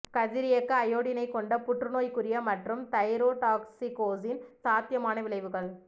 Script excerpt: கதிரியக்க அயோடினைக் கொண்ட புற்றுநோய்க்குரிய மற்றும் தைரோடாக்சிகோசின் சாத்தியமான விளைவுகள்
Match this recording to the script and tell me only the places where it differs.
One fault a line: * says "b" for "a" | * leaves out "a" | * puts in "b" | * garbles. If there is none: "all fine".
all fine